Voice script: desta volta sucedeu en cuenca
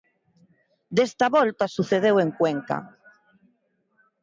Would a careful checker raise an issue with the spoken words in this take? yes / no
no